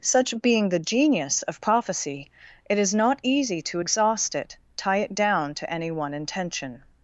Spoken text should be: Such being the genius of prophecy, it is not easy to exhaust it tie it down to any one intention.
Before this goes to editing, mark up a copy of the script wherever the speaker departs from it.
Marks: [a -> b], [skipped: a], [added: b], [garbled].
Such being the genius of prophecy, it is not easy to exhaust it tie it down to any one intention.